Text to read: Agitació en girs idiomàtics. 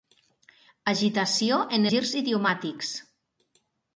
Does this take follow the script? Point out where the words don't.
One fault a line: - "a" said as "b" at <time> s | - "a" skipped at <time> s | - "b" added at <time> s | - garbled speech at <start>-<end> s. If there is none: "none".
none